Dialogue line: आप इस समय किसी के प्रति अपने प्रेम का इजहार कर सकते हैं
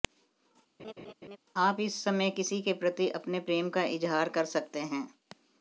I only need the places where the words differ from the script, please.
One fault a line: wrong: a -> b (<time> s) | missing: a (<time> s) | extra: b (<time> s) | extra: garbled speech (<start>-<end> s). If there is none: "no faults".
no faults